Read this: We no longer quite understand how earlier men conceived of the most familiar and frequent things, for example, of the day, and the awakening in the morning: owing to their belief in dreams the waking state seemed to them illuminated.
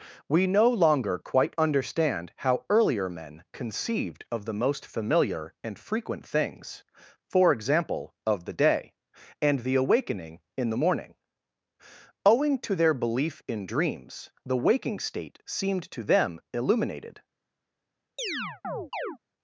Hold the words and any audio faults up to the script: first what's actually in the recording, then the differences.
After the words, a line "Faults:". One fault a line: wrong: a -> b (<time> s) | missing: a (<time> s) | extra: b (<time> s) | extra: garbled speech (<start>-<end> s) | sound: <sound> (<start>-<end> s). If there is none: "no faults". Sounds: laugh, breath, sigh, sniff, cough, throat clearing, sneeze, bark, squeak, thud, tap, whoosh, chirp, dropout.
We no longer quite understand how earlier men conceived of the most familiar and frequent things, for example, of the day, and the awakening in the morning: owing to their belief in dreams the waking state seemed to them illuminated.
Faults:
sound: chirp (18.2-19.2 s)